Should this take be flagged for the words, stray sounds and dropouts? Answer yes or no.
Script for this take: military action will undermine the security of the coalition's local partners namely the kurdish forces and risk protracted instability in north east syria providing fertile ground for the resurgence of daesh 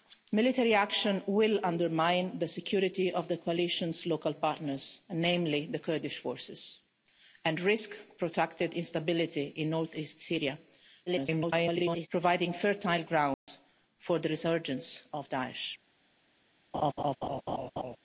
yes